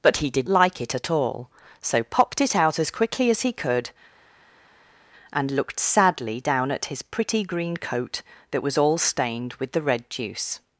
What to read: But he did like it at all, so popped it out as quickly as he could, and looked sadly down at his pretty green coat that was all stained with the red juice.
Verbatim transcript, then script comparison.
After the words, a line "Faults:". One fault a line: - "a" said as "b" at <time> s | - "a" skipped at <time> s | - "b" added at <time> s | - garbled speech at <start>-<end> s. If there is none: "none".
But he did like it at all, so popped it out as quickly as he could, and looked sadly down at his pretty green coat that was all stained with the red juice.
Faults:
none